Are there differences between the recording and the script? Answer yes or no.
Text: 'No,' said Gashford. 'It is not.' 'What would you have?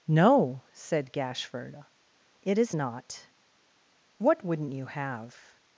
yes